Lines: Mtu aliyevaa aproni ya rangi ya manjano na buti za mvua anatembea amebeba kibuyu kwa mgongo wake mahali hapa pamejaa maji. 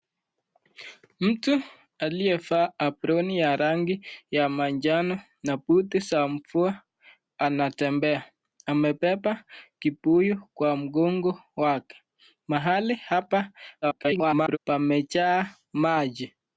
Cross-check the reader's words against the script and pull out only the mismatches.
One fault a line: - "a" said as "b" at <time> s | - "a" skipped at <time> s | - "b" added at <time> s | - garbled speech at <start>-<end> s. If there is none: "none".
- garbled speech at 13.8-14.6 s